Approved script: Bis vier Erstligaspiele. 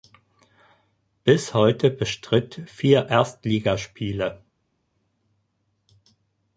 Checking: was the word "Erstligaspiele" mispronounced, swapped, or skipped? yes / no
no